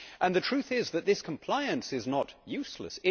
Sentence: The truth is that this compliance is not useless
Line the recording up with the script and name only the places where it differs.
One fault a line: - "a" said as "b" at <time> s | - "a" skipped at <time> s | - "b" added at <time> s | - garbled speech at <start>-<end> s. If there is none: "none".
none